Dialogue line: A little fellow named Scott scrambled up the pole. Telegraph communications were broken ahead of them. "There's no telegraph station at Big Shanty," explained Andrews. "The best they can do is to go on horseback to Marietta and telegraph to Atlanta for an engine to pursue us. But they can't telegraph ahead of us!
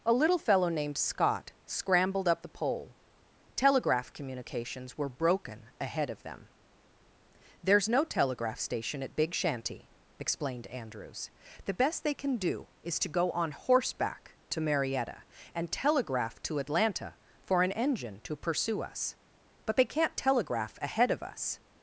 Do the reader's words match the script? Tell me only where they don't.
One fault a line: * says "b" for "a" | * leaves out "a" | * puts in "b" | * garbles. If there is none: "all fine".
all fine